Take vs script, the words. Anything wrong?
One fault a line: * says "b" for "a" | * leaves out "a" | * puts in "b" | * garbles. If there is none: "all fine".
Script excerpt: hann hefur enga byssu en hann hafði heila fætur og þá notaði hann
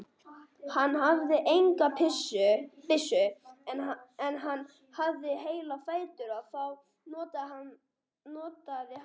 * says "hafði" for "hefur"